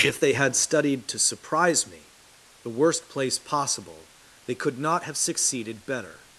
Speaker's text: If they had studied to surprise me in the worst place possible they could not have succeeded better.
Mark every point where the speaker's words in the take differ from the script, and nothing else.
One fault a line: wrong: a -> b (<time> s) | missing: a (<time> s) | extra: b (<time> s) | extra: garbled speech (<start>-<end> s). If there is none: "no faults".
missing: in (2.1 s)